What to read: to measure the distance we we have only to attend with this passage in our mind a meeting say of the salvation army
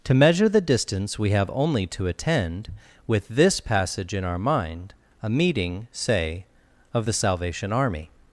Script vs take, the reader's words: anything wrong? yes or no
yes